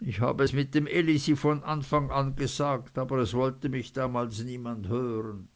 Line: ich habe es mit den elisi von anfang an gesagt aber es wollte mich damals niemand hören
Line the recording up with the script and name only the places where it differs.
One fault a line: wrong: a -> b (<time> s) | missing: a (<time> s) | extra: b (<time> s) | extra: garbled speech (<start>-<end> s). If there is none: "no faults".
wrong: den -> dem (0.7 s)